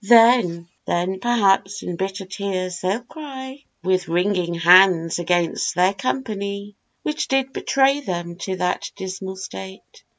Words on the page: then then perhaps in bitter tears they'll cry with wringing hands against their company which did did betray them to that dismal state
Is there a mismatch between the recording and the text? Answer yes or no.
yes